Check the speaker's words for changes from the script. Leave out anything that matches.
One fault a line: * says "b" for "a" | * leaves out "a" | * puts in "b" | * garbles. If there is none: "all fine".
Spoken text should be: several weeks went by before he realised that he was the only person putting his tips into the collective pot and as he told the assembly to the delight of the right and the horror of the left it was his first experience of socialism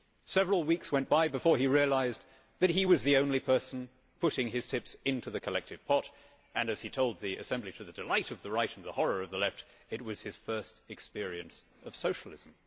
all fine